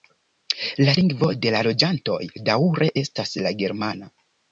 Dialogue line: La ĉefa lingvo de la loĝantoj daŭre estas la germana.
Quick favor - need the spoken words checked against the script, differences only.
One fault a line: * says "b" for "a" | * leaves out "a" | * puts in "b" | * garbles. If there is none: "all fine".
* leaves out "ĉefa"